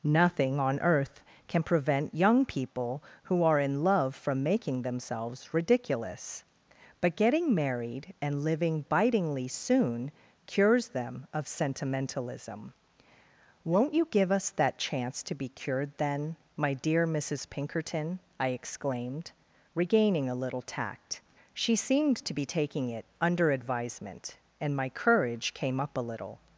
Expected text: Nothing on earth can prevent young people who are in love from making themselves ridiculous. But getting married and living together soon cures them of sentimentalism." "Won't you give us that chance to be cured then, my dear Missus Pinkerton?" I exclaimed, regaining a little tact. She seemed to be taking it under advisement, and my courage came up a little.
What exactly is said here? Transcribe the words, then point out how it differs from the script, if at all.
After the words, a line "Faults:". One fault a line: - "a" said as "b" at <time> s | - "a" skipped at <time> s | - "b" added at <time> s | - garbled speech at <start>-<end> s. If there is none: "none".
Nothing on earth can prevent young people who are in love from making themselves ridiculous. But getting married and living bitingly soon cures them of sentimentalism." "Won't you give us that chance to be cured then, my dear Missus Pinkerton?" I exclaimed, regaining a little tact. She seemed to be taking it under advisement, and my courage came up a little.
Faults:
- "together" said as "bitingly" at 8.9 s